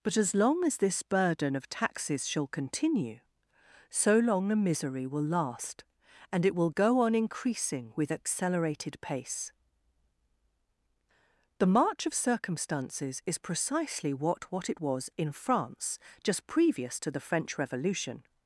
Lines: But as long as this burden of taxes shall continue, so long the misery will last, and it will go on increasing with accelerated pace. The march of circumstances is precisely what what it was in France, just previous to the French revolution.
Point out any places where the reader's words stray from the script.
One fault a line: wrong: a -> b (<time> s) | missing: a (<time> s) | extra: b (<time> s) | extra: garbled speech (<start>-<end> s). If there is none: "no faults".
no faults